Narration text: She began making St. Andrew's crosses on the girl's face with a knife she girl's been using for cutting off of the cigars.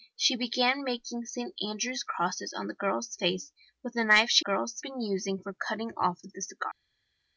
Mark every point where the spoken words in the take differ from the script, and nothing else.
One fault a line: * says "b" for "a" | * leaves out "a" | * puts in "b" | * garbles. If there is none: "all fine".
all fine